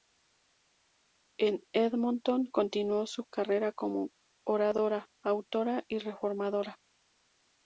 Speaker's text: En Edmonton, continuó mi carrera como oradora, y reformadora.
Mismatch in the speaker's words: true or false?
true